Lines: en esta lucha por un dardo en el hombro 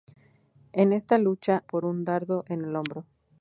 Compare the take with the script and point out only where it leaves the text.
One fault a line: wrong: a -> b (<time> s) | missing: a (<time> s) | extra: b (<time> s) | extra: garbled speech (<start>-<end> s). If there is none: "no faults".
no faults